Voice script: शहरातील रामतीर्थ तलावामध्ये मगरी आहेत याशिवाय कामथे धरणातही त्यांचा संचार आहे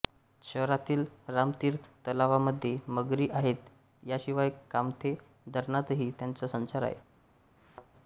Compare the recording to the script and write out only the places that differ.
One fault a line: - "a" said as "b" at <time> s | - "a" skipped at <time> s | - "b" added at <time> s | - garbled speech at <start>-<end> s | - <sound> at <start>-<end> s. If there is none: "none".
- thud at 7.6-7.9 s